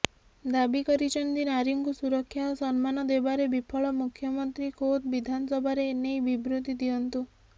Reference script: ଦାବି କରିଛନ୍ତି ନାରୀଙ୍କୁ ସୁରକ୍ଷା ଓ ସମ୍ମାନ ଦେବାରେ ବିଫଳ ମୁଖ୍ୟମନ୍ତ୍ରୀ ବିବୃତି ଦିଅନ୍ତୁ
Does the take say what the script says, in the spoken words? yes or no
no